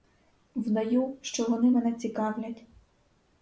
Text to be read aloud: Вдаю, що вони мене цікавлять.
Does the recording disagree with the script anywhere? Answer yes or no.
no